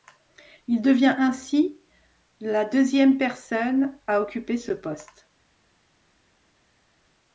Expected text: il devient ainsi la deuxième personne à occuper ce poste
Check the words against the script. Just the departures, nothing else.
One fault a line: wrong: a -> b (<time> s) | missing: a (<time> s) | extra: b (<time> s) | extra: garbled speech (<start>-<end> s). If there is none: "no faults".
no faults